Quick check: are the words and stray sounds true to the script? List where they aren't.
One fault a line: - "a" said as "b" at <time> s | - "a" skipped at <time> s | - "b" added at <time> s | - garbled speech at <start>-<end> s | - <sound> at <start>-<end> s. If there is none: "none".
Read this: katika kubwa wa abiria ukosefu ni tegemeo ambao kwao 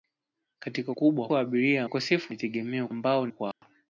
- dropout at 3.5-3.6 s